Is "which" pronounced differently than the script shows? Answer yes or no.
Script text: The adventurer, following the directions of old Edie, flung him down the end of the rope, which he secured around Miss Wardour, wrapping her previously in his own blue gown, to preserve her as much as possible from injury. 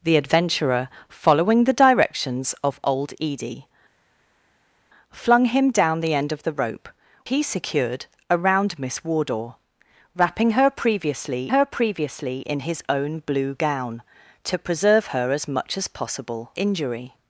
yes